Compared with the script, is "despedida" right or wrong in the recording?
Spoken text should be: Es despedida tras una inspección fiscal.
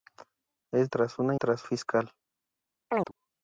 wrong